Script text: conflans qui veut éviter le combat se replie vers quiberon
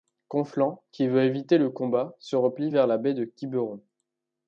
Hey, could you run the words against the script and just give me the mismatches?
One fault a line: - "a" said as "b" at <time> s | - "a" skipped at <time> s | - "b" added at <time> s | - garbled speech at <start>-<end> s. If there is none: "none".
- "la baie de" added at 2.9 s